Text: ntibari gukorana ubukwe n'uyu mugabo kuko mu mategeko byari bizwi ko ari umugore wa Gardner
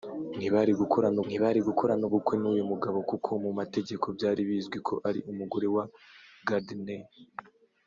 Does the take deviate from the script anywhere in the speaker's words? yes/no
yes